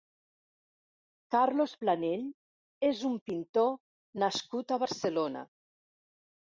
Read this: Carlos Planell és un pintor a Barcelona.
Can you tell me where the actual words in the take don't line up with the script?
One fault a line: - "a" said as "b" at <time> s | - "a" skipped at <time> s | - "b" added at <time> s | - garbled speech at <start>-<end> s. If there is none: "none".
- "nascut" added at 4.2 s